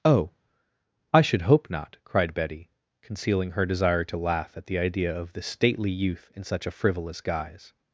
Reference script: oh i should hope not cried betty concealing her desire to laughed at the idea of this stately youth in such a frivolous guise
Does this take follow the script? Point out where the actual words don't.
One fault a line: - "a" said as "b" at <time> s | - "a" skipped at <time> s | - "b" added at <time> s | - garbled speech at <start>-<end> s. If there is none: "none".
- "laughed" said as "laugh" at 4.2 s